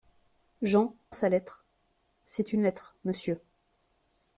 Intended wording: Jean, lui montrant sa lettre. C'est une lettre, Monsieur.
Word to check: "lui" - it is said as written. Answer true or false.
false